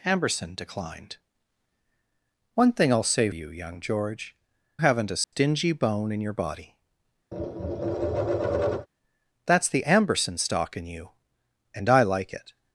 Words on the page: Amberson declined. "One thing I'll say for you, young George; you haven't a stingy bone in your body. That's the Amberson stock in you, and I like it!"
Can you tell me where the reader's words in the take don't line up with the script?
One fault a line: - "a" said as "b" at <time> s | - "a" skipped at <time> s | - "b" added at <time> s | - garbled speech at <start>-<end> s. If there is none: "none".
- "for" skipped at 3.3 s
- "you" skipped at 4.4 s